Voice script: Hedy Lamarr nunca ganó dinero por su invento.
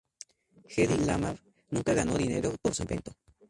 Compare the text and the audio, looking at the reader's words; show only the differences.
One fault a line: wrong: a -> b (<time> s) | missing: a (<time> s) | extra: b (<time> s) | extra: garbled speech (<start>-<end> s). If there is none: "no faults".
no faults